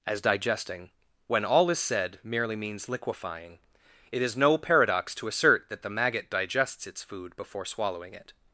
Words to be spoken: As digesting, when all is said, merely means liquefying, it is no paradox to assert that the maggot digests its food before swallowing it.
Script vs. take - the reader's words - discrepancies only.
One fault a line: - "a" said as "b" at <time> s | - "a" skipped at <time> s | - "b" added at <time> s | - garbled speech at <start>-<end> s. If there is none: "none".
none